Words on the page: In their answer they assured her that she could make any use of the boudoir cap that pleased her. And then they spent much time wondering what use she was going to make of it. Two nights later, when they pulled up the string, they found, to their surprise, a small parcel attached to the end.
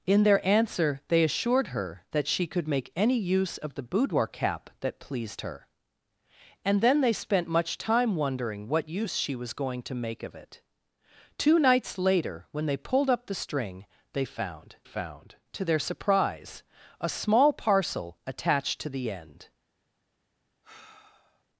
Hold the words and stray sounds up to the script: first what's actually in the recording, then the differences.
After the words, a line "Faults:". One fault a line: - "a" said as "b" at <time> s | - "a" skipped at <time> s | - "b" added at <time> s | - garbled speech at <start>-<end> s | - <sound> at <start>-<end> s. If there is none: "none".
In their answer they assured her that she could make any use of the boudoir cap that pleased her. And then they spent much time wondering what use she was going to make of it. Two nights later, when they pulled up the string, they found found, to their surprise, a small parcel attached to the end.
Faults:
- "found" added at 14.8 s
- sigh at 20.6-21.4 s